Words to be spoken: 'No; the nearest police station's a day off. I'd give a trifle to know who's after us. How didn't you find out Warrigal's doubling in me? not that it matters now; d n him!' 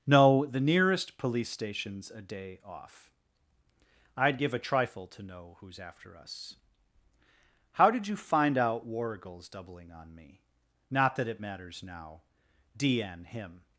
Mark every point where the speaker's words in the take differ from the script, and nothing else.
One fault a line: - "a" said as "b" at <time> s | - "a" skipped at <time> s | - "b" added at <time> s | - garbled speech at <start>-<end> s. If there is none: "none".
- "didn't" said as "did" at 7.9 s
- "in" said as "on" at 9.9 s